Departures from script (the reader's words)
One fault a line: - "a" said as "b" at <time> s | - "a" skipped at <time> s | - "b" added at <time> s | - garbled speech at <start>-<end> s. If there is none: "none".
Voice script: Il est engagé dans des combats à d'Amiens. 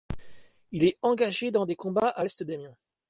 - "l'est" added at 2.2 s